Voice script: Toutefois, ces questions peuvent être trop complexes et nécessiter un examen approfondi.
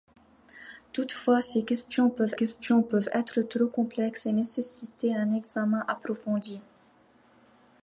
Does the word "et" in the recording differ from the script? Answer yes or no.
no